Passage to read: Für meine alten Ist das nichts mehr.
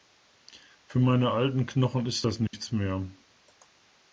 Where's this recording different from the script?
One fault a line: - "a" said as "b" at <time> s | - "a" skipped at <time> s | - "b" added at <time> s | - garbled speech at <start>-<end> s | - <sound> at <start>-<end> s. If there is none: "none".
- "Knochen" added at 1.7 s
- dropout at 2.5-2.5 s